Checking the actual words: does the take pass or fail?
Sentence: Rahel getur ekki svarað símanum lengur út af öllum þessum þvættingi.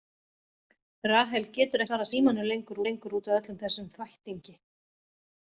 fail